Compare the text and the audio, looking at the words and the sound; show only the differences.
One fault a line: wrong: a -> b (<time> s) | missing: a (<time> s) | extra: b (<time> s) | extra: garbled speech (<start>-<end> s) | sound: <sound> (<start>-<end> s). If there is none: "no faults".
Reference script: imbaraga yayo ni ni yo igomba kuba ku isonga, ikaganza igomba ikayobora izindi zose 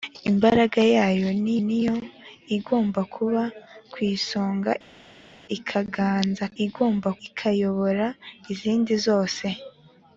no faults